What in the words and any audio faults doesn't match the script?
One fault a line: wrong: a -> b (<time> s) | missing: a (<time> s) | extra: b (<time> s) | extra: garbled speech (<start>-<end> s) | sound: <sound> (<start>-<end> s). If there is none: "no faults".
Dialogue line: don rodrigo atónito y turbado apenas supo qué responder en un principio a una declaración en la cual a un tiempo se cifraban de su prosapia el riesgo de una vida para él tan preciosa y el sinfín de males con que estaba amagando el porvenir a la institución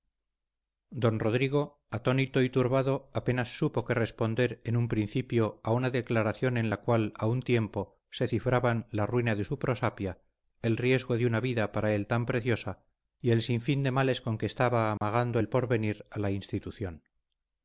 extra: la ruina (8.9 s)
sound: dropout (15.0-15.0 s)